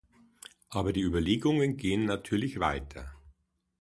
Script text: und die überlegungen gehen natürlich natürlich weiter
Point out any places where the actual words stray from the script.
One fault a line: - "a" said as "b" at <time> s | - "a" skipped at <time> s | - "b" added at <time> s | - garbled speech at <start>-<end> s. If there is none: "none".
- "und" said as "aber" at 0.7 s
- "natürlich" skipped at 2.6 s